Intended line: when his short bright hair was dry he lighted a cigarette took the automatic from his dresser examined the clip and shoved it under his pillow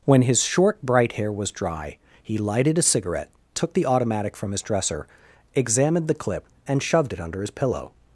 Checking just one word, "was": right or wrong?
right